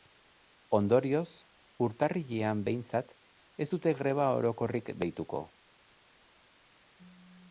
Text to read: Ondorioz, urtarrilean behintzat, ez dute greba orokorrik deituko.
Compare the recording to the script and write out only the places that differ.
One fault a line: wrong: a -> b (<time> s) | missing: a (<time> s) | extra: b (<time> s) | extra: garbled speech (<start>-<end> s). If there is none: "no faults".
no faults